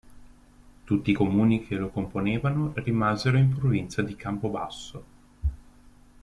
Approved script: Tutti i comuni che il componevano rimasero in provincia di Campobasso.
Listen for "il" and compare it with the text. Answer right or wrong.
wrong